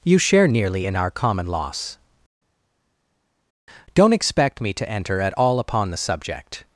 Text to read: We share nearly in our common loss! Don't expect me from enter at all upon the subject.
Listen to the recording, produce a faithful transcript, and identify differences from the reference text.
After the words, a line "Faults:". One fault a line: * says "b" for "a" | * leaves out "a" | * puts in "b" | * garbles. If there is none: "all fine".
You share nearly in our common loss! Don't expect me to enter at all upon the subject.
Faults:
* says "You" for "We"
* says "to" for "from"